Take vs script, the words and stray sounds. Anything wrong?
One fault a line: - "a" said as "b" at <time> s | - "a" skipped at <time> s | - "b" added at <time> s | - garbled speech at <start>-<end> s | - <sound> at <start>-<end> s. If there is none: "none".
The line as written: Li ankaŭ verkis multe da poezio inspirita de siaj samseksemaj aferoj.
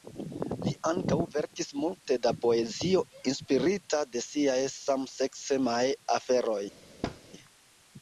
- thud at 7.0-7.2 s